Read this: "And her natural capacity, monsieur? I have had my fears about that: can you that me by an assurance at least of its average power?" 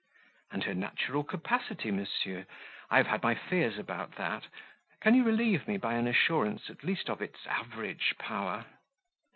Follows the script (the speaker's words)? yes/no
no